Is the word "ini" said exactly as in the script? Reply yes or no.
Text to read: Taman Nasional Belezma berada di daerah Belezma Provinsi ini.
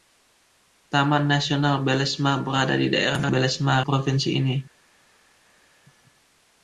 yes